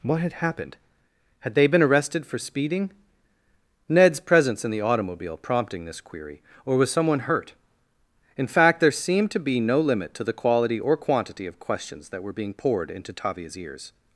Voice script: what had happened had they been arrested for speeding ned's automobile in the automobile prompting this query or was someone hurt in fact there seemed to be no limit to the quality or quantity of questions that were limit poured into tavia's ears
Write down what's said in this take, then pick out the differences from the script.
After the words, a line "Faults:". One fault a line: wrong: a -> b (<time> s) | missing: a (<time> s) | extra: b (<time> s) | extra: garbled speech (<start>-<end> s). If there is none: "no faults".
what had happened had they been arrested for speeding ned's presence in the automobile prompting this query or was someone hurt in fact there seemed to be no limit to the quality or quantity of questions that were being poured into tavia's ears
Faults:
wrong: automobile -> presence (4.2 s)
wrong: limit -> being (12.3 s)